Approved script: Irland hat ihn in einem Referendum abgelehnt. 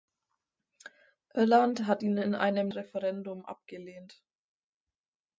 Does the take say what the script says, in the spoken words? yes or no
yes